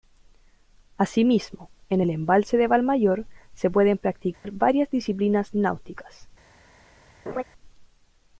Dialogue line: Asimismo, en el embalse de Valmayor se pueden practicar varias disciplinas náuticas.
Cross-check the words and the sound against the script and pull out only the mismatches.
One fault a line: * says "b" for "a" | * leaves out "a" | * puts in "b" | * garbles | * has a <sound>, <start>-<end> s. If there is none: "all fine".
* has a dropout, 4.3-4.4 s
* has a laugh, 7.3-7.4 s